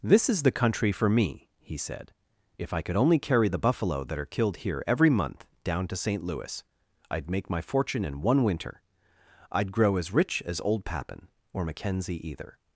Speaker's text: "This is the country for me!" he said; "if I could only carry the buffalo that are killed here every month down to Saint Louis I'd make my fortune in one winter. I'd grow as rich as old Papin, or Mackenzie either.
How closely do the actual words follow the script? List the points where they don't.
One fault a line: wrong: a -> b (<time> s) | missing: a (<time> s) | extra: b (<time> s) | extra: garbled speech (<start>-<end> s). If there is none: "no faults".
no faults